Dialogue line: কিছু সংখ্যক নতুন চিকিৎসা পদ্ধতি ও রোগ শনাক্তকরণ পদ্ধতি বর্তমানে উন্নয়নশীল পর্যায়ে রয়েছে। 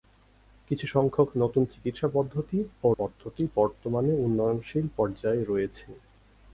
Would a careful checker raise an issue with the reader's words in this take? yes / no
yes